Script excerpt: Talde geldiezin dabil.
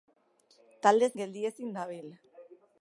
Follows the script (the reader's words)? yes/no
yes